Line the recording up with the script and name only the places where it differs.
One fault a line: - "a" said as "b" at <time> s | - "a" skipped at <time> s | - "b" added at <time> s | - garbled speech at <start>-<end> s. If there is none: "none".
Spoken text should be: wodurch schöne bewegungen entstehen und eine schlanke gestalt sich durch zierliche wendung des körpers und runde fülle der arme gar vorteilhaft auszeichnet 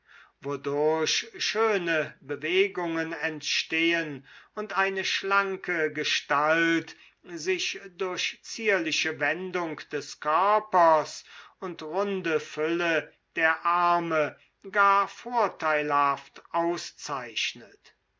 none